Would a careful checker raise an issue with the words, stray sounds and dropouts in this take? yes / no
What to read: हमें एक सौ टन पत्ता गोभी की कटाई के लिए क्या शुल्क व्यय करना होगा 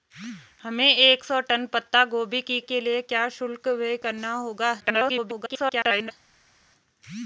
yes